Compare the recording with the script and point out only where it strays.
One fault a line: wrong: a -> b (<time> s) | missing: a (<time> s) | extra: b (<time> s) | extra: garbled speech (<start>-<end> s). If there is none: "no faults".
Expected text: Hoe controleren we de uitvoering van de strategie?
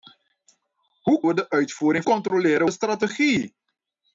missing: controleren (1.2 s)
wrong: van -> controleren (2.0 s)